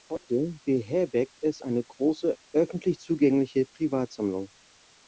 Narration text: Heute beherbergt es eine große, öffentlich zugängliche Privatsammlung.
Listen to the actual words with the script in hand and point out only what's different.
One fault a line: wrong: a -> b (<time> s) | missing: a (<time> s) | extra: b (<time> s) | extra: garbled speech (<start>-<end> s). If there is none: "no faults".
no faults